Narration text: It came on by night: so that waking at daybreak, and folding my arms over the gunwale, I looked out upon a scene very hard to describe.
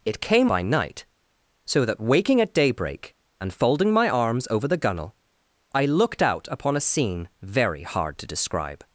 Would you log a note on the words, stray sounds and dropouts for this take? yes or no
yes